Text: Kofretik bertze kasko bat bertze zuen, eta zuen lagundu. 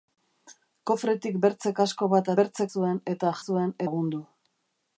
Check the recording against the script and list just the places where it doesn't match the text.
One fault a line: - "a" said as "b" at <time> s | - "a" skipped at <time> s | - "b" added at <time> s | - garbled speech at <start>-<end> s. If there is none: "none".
none